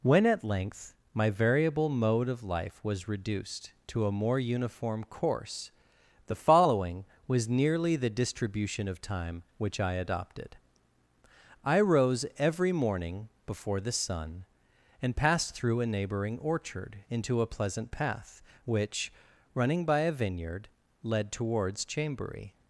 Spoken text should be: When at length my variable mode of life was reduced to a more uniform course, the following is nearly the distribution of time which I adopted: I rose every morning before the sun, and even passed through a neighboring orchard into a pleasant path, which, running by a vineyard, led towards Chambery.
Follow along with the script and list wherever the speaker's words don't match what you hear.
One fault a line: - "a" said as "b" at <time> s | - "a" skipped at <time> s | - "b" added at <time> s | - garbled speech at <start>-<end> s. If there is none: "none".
- "is" said as "was" at 7.3 s
- "even" skipped at 15.2 s